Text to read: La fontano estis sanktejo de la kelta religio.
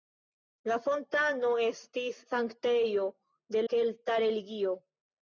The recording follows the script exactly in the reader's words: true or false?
false